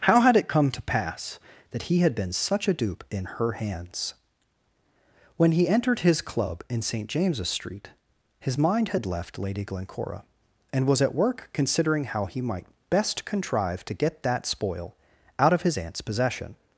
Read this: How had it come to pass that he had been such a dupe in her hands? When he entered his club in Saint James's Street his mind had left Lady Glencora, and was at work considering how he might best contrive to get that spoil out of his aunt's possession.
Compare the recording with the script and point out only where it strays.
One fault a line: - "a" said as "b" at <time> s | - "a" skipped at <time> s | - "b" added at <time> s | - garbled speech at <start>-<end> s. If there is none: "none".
none